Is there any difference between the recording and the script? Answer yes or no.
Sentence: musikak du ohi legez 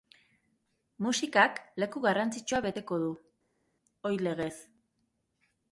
yes